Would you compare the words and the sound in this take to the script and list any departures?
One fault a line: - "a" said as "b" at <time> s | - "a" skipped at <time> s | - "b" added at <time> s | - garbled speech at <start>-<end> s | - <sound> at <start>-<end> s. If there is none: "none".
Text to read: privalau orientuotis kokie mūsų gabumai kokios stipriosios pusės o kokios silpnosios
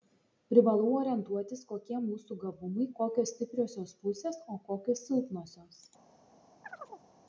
- chirp at 6.6-7.1 s